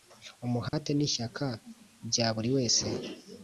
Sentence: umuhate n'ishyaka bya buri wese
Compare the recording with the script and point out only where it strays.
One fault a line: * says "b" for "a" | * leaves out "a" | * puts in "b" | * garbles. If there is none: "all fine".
all fine